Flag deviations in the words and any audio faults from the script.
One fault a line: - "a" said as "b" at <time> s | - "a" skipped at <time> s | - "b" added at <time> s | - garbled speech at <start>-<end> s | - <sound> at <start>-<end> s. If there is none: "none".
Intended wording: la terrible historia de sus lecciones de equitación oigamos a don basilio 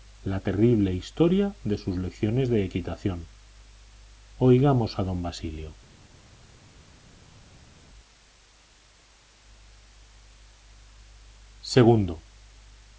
none